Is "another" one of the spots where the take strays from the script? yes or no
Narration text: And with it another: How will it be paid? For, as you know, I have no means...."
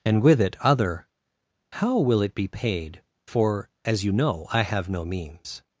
yes